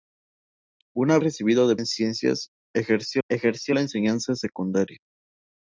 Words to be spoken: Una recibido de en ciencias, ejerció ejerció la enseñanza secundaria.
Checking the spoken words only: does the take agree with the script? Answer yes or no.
yes